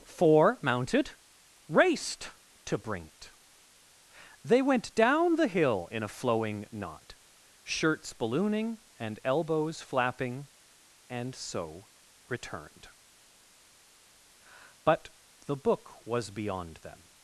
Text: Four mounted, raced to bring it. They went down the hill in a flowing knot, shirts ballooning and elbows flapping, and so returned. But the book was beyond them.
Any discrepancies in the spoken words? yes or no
no